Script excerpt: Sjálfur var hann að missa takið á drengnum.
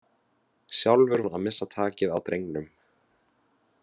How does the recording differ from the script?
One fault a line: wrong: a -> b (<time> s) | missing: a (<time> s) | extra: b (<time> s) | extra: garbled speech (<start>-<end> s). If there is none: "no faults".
missing: var (1.2 s)